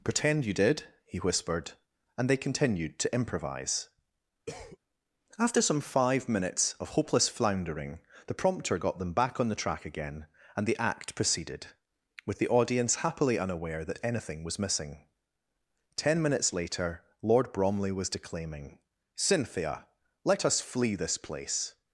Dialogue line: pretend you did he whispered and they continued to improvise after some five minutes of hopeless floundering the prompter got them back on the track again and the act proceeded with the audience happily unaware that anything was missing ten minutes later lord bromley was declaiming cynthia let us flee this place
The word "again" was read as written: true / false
true